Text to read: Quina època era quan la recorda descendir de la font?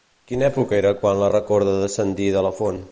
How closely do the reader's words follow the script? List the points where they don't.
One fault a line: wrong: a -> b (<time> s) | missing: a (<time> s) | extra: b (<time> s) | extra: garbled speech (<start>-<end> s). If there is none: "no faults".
no faults